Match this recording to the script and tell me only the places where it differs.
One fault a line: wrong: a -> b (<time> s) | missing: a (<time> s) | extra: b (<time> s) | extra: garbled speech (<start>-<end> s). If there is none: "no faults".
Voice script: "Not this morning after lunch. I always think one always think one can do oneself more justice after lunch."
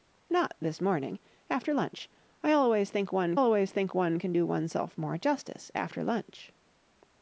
no faults